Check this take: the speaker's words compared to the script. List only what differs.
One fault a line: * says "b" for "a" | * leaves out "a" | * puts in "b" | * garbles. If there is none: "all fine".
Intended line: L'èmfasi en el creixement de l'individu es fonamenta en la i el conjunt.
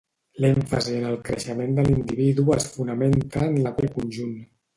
all fine